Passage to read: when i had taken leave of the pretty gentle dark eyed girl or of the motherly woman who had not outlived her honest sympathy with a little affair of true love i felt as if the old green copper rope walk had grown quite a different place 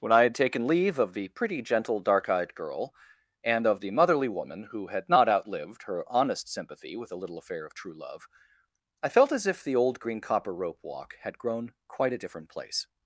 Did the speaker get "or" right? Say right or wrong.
wrong